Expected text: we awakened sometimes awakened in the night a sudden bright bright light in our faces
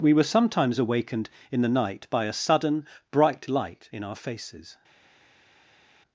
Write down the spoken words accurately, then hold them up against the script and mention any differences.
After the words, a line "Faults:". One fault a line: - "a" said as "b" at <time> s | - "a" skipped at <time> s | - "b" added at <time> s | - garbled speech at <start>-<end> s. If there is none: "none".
we were sometimes awakened in the night by a sudden bright light in our faces
Faults:
- "awakened" said as "were" at 0.1 s
- "by" added at 2.1 s
- "bright" skipped at 3.5 s